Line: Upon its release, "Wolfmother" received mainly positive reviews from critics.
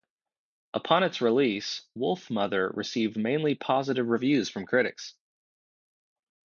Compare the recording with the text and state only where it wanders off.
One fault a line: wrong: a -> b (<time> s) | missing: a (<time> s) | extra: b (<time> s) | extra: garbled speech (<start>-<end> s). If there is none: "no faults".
no faults